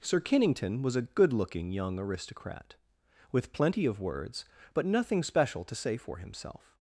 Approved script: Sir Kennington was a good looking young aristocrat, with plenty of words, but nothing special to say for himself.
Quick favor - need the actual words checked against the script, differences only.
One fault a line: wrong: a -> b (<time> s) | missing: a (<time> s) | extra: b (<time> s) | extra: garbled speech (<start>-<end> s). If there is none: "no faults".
no faults